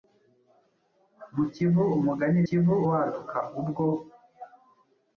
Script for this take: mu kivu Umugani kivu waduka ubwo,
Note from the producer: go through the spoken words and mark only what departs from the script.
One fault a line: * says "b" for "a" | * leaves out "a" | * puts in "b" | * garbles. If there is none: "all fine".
all fine